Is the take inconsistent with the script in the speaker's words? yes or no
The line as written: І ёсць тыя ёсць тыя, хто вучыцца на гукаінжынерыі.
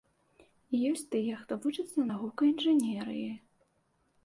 yes